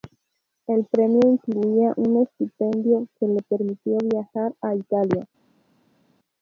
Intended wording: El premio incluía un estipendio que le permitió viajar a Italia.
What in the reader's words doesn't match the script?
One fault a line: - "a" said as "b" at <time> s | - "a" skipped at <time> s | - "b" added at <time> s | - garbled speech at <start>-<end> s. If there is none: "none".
none